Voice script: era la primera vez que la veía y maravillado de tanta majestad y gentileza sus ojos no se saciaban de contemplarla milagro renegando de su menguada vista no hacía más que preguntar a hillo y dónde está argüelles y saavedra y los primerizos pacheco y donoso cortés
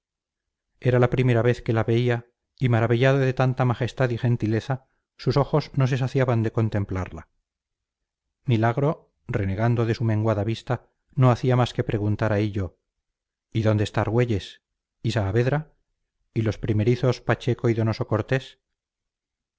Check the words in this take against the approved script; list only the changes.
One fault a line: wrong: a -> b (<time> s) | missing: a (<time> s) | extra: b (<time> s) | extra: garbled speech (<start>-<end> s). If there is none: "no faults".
no faults